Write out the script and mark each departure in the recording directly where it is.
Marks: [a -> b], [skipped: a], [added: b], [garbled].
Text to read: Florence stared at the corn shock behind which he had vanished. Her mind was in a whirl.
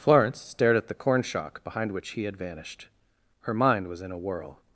Florence stared at the corn shock behind which he had vanished. Her mind was in a whirl.